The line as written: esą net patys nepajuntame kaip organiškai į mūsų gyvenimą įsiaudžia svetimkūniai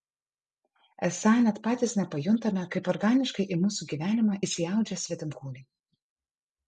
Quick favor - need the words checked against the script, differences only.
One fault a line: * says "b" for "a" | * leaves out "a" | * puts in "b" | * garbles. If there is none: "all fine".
all fine